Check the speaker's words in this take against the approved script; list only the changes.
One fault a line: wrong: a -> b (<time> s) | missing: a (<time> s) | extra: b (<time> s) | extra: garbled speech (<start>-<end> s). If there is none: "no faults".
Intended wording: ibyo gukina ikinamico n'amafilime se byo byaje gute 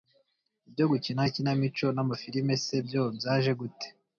no faults